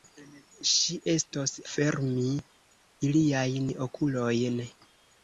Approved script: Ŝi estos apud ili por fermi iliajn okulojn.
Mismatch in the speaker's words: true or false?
true